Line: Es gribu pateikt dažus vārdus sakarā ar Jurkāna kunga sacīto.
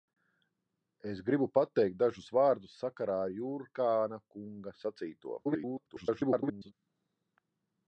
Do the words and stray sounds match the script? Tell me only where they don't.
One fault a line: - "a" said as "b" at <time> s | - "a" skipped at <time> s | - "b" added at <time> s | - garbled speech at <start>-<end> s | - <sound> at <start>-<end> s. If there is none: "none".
- garbled speech at 5.4-6.7 s